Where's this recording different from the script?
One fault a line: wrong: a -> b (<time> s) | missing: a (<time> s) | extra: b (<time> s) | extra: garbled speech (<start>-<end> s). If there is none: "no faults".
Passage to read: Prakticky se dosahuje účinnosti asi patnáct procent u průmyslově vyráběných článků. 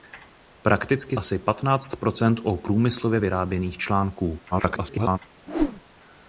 missing: se dosahuje účinnosti (1.2 s)
extra: garbled speech (4.5-5.2 s)